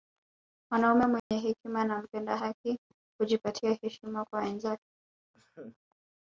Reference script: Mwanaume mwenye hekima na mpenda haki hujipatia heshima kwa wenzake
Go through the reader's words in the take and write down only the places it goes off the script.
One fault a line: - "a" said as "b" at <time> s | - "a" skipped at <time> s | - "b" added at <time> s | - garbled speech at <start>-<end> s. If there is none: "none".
none